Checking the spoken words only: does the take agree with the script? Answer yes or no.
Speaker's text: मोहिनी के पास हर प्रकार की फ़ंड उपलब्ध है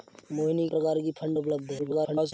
no